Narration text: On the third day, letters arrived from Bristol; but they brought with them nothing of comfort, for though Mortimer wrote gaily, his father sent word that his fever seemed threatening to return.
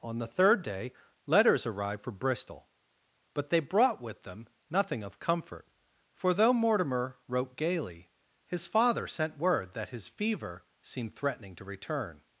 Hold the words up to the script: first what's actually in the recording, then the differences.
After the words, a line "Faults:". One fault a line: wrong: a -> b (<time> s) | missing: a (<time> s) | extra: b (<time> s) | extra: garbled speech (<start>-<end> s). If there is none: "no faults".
On the third day, letters arrived for Bristol; but they brought with them nothing of comfort, for though Mortimer wrote gaily, his father sent word that his fever seemed threatening to return.
Faults:
wrong: from -> for (2.0 s)